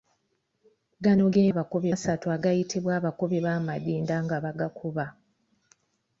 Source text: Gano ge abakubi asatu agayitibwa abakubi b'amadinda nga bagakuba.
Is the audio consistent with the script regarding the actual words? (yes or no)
yes